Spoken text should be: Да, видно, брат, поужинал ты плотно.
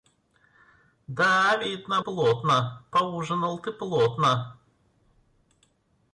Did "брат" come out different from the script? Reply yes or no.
yes